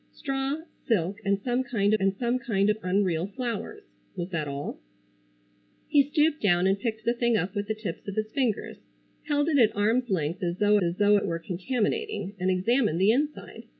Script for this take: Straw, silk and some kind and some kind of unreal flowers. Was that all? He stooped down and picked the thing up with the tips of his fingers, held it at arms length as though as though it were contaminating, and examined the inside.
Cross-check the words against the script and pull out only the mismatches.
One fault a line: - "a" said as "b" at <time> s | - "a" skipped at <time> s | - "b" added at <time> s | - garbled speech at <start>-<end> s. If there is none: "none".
none